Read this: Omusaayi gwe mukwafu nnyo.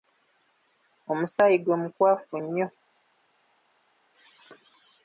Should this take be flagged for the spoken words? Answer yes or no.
no